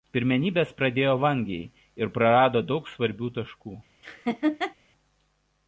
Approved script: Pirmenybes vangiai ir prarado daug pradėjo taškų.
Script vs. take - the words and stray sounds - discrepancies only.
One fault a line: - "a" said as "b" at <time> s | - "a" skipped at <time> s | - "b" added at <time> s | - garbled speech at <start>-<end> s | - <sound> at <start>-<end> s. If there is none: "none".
- "pradėjo" added at 0.8 s
- "pradėjo" said as "svarbių" at 2.9 s
- laugh at 4.0-4.8 s